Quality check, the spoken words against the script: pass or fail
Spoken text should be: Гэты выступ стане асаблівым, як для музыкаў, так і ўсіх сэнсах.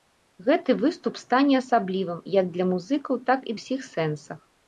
pass